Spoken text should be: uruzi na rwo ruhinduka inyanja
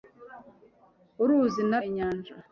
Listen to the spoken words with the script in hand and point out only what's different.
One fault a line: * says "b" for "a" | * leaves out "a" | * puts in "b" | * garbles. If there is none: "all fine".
* leaves out "rwo ruhinduka"